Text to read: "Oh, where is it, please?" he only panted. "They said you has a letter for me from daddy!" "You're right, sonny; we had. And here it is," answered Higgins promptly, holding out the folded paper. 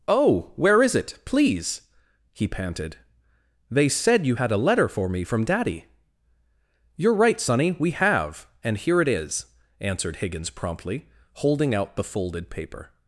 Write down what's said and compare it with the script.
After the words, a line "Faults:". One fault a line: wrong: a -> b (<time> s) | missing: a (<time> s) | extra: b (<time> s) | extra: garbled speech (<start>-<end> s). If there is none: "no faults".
"Oh, where is it, please?" he panted. "They said you had a letter for me from daddy!" "You're right, sonny; we have. And here it is," answered Higgins promptly, holding out the folded paper.
Faults:
missing: only (2.5 s)
wrong: has -> had (4.3 s)
wrong: had -> have (7.9 s)